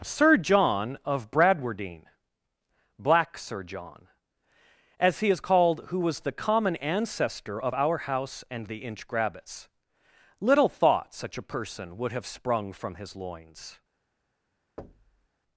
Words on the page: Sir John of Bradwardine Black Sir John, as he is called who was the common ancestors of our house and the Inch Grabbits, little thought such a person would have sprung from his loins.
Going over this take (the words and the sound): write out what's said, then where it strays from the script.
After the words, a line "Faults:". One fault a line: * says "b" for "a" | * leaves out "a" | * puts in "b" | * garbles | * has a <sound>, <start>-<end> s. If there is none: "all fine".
Sir John of Bradwardine Black Sir John, as he is called who was the common ancestor of our house and the Inch Grabbits, little thought such a person would have sprung from his loins.
Faults:
* says "ancestor" for "ancestors"
* has a thud, 14.8-15.3 s